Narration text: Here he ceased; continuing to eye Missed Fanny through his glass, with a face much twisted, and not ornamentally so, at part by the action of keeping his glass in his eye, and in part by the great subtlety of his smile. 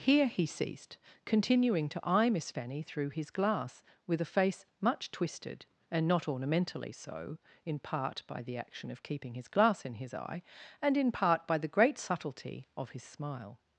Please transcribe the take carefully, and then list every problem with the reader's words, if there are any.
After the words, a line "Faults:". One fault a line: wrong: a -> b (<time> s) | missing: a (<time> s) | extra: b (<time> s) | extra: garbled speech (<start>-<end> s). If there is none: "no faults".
Here he ceased; continuing to eye Miss Fanny through his glass, with a face much twisted, and not ornamentally so, in part by the action of keeping his glass in his eye, and in part by the great subtlety of his smile.
Faults:
wrong: Missed -> Miss (2.3 s)
wrong: at -> in (7.7 s)